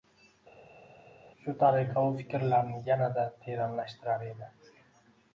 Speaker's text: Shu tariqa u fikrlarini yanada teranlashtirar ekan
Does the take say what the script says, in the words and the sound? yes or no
no